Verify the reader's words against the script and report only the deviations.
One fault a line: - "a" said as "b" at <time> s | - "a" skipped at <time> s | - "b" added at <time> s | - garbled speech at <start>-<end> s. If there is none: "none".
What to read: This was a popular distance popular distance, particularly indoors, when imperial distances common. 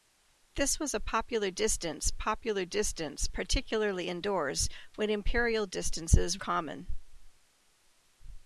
none